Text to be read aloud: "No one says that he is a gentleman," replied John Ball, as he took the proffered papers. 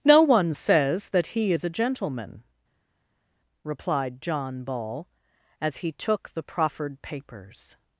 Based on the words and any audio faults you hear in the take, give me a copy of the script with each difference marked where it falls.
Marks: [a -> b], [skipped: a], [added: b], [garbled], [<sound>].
"No one says that he is a gentleman," replied John Ball, as he took the proffered papers.